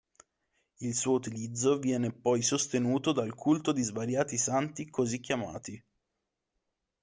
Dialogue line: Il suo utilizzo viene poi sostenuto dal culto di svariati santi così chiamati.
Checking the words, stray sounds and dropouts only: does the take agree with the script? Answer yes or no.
yes